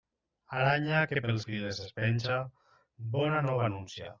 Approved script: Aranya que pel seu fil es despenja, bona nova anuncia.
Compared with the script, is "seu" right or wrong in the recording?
wrong